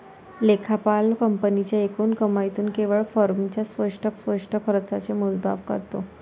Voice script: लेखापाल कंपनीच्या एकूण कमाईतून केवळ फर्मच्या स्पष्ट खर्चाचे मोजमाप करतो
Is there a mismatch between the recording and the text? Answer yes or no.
yes